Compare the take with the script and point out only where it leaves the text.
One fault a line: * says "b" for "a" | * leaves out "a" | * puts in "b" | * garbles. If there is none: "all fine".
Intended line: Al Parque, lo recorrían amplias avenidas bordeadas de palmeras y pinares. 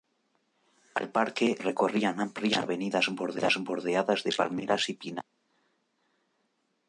* leaves out "lo"